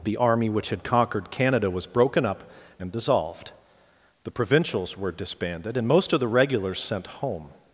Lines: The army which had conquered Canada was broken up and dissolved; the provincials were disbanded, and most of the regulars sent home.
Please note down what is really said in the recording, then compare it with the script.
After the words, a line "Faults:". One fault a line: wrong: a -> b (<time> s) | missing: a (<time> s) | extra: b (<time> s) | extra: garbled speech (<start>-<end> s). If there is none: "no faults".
The army which had conquered Canada was broken up and dissolved; the provincials were disbanded, and most of the regulars sent home.
Faults:
no faults